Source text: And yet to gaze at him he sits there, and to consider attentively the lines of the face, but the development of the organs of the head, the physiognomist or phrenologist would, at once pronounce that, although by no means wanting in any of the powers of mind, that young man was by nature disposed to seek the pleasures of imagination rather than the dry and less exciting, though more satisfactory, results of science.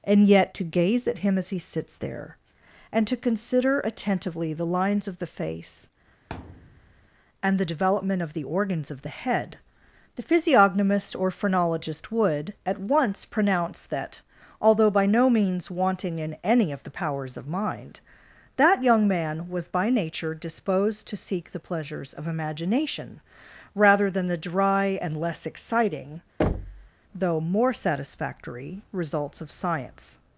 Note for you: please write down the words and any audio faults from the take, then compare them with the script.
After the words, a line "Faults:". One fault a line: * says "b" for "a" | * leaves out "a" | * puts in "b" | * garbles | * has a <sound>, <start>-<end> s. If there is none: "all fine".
And yet to gaze at him as he sits there, and to consider attentively the lines of the face, and the development of the organs of the head, the physiognomist or phrenologist would, at once pronounce that, although by no means wanting in any of the powers of mind, that young man was by nature disposed to seek the pleasures of imagination rather than the dry and less exciting, though more satisfactory, results of science.
Faults:
* puts in "as"
* has a thud, 6.3-7.1 s
* says "and" for "but"
* has a thud, 26.4-26.9 s